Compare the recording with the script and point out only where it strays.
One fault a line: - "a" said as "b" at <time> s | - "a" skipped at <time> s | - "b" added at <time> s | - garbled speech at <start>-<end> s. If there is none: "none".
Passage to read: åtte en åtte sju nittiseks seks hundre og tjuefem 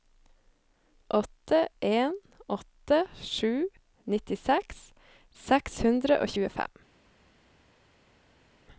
none